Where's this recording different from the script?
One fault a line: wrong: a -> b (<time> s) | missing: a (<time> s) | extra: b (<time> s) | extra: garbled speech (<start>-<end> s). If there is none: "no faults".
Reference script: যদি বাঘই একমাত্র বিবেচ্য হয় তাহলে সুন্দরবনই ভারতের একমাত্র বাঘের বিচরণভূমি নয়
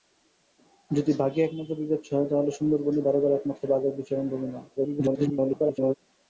extra: garbled speech (4.8-6.0 s)